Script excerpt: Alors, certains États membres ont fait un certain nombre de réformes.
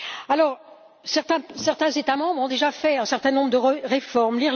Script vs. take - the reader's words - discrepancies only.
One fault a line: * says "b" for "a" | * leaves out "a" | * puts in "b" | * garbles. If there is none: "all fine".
* puts in "déjà"